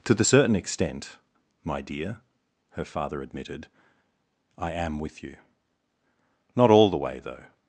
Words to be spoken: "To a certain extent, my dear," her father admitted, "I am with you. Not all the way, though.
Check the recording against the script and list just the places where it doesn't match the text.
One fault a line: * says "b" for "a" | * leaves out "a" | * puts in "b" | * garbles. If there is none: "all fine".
* says "the" for "a"